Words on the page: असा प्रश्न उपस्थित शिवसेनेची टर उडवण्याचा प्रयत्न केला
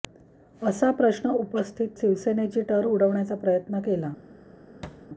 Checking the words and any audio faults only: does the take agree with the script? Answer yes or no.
no